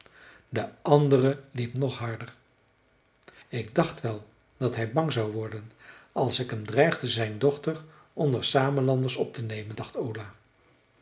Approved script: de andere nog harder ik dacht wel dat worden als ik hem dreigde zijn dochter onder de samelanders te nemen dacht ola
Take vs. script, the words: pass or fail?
fail